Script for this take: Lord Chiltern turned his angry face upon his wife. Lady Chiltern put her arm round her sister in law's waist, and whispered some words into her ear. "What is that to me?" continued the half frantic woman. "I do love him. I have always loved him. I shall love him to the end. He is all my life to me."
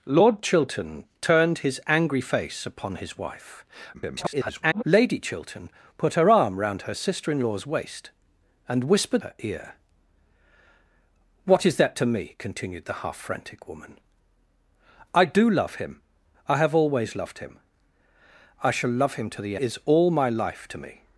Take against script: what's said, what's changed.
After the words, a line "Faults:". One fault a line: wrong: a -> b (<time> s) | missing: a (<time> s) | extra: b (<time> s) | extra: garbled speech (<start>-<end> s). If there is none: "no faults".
Lord Chiltern turned his angry face upon his wife. [garbled] Lady Chiltern put her arm round her sister in law's waist, and whispered her ear. "What is that to me?" continued the half frantic woman. "I do love him. I have always loved him. I shall love him to the is all my life to me."
Faults:
extra: garbled speech (3.9-4.8 s)
missing: some words into (9.2 s)
missing: end He (19.6 s)